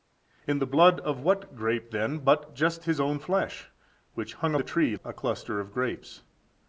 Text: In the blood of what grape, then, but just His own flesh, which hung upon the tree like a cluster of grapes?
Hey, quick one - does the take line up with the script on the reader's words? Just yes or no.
no